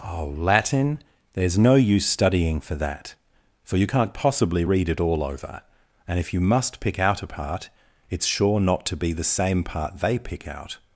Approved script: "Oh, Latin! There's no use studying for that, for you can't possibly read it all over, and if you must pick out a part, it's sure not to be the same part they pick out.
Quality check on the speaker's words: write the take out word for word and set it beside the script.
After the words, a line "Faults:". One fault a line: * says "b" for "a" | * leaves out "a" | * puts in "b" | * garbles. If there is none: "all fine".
"Oh, Latin! There's no use studying for that, for you can't possibly read it all over, and if you must pick out a part, it's sure not to be the same part they pick out.
Faults:
all fine